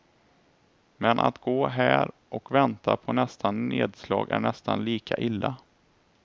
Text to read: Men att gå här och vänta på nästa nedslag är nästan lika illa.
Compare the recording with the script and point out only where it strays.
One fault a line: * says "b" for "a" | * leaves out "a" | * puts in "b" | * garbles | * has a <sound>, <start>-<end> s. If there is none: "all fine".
all fine